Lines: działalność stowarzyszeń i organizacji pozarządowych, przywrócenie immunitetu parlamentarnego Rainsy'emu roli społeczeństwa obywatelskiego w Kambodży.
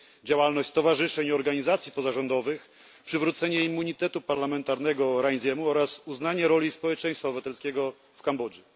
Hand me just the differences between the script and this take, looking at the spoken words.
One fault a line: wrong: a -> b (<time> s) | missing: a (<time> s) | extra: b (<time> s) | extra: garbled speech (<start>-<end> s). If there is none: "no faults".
extra: oraz uznanie (5.7 s)